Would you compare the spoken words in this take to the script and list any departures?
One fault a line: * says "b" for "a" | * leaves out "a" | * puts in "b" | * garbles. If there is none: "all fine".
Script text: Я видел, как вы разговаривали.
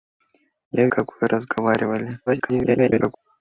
* leaves out "видел"
* garbles